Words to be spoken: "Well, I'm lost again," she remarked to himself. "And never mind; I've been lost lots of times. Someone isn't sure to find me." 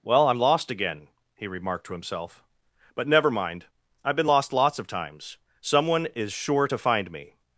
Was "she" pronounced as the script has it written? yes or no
no